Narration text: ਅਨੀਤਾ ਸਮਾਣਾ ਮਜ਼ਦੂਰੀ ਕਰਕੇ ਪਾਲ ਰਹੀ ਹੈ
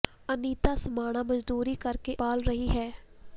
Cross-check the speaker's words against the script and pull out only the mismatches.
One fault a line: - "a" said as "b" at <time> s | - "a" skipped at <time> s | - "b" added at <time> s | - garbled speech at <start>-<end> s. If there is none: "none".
none